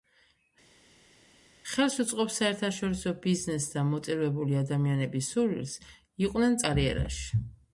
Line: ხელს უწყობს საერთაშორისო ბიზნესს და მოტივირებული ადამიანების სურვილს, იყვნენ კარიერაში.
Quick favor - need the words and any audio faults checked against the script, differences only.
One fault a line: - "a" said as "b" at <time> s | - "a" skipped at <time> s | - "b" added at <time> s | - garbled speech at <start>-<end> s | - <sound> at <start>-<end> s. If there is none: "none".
none